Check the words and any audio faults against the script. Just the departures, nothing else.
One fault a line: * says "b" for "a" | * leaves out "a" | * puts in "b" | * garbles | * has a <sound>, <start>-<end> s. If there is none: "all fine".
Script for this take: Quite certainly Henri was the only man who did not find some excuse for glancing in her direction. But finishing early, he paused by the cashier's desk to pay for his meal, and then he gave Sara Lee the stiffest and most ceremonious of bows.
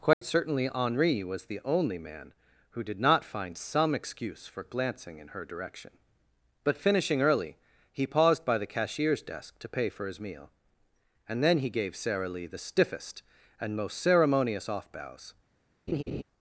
* has a dropout, 0.1-0.2 s
* says "off" for "of"
* has a laugh, 15.9-16.2 s